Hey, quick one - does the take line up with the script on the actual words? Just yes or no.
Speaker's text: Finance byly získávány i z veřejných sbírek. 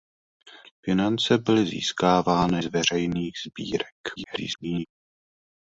no